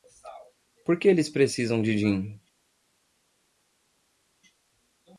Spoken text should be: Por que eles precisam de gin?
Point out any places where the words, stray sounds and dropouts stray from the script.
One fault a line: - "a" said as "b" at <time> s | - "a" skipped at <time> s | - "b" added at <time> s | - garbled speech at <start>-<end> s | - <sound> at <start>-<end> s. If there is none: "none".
none